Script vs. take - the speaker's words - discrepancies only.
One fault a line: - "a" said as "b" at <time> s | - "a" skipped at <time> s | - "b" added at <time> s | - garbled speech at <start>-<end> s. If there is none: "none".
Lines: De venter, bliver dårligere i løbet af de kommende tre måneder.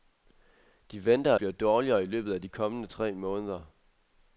none